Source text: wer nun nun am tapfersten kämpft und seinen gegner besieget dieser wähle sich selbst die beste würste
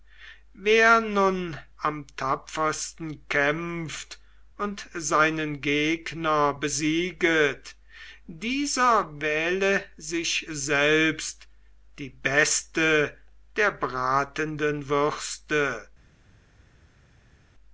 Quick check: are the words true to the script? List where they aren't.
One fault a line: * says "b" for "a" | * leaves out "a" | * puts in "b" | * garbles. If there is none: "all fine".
* leaves out "nun"
* puts in "der bratenden"